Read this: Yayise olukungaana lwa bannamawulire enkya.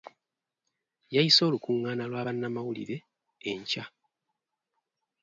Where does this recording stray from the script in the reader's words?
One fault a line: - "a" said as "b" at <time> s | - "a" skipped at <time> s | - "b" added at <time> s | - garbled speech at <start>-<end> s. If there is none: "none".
none